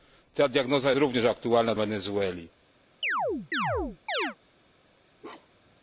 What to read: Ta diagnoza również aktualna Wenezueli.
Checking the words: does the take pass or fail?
pass